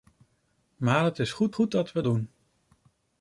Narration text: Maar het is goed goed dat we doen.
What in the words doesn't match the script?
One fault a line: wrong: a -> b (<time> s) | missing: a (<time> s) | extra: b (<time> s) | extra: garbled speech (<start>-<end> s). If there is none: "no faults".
no faults